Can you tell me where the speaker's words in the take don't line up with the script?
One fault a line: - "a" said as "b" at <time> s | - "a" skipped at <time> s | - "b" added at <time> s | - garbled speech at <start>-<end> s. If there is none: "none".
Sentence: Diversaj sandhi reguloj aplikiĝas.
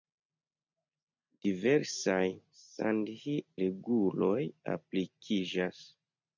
none